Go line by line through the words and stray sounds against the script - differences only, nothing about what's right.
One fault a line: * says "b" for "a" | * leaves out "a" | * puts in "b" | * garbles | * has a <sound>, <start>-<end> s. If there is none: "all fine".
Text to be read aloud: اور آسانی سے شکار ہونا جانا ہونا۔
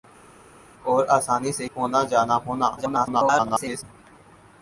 * leaves out "شکار"
* garbles